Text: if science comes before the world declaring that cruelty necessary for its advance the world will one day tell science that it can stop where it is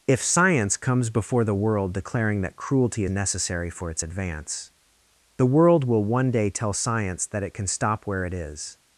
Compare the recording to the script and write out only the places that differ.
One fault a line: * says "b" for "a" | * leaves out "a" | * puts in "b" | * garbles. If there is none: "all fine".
all fine